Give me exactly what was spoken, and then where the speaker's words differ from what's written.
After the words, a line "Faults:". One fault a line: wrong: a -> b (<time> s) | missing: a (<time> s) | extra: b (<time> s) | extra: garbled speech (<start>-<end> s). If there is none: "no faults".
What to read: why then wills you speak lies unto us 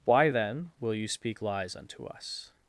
why then will you speak lies unto us
Faults:
wrong: wills -> will (0.8 s)